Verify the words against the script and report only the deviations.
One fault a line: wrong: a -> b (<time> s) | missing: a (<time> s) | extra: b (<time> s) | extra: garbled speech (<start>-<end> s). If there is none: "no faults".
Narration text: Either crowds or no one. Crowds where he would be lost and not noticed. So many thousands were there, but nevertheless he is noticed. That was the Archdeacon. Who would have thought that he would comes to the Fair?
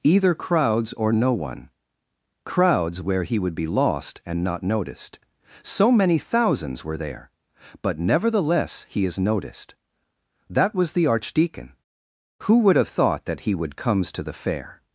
no faults